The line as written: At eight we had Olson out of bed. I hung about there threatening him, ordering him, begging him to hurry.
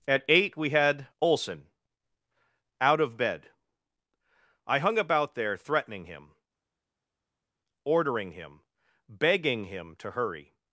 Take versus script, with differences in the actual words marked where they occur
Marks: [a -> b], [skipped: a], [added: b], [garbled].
At eight we had Olson out of bed. I hung about there threatening him, ordering him, begging him to hurry.